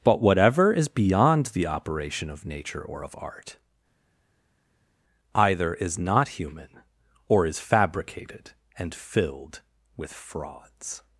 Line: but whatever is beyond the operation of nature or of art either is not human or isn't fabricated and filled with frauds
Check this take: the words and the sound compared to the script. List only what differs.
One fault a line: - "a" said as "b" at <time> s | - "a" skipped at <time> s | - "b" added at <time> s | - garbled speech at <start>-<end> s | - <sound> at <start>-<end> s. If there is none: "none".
- "isn't" said as "is" at 7.5 s